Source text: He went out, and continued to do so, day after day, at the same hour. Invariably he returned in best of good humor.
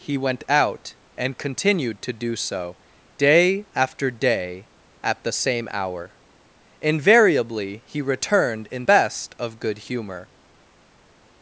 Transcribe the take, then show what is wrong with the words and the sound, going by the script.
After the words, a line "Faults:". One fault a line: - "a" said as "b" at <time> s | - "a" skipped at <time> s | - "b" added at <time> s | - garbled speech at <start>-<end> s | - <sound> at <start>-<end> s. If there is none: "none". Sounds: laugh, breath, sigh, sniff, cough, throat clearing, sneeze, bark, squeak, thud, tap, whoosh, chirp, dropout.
He went out, and continued to do so, day after day, at the same hour. Invariably he returned in best of good humor.
Faults:
none